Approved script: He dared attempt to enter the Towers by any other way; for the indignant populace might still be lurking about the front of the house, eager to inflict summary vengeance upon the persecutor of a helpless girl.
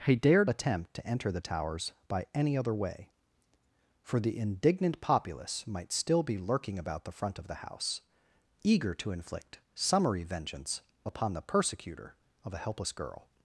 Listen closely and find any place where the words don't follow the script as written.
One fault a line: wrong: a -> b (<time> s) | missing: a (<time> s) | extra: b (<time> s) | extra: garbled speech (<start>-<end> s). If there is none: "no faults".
no faults